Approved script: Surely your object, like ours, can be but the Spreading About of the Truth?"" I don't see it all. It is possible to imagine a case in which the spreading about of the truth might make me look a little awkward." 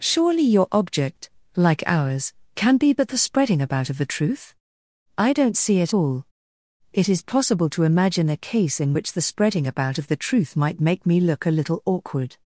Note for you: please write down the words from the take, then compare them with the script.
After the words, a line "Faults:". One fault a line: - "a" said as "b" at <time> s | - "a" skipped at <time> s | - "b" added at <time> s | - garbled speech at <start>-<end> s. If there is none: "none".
Surely your object, like ours, can be but the Spreading About of the Truth?"" I don't see it all. It is possible to imagine a case in which the spreading about of the truth might make me look a little awkward."
Faults:
none